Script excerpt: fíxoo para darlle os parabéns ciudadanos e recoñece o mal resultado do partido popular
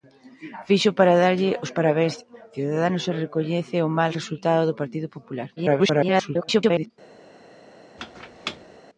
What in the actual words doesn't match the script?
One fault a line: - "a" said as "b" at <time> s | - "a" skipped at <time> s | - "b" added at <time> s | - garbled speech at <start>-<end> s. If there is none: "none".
- garbled speech at 5.6-6.9 s